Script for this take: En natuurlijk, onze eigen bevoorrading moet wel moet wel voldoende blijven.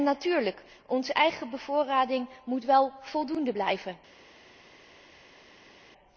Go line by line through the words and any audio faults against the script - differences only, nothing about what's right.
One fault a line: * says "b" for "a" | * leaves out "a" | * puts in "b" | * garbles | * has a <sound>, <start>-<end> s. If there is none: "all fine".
* leaves out "moet wel"